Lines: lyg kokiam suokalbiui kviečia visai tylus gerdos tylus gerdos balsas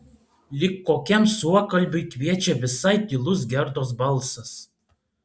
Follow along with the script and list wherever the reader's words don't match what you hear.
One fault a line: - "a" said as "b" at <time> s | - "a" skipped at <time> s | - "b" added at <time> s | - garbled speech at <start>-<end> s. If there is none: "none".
- "tylus gerdos" skipped at 3.9 s